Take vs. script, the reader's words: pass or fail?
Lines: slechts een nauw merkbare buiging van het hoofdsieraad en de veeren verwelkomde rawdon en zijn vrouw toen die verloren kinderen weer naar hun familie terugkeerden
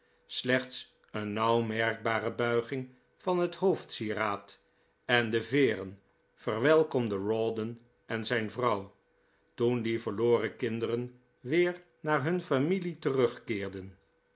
pass